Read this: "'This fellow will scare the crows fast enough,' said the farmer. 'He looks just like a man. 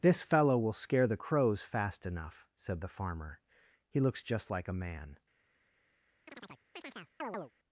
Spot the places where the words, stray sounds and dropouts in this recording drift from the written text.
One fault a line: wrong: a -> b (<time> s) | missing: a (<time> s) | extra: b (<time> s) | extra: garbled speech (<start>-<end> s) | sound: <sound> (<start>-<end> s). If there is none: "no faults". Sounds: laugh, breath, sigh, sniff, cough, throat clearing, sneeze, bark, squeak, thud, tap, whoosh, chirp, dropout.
sound: chirp (6.3-7.5 s)